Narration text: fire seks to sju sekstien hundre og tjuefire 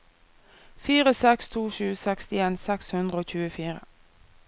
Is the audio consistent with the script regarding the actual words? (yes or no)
no